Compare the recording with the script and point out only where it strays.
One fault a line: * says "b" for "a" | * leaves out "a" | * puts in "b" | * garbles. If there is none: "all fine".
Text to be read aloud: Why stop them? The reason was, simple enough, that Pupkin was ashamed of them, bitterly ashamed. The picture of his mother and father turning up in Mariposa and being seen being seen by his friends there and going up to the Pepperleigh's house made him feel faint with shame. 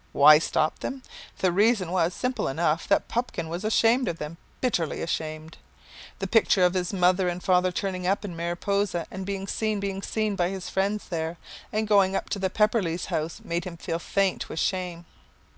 all fine